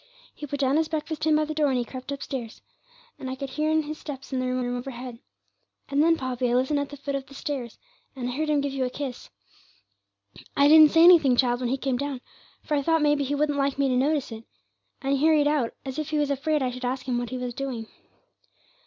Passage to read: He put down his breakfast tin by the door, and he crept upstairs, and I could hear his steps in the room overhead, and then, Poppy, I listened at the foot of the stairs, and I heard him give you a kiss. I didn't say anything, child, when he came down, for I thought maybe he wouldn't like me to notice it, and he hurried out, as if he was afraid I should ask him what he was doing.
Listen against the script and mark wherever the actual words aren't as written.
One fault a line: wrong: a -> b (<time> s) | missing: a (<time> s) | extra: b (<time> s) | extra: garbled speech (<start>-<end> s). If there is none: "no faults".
extra: room (4.6 s)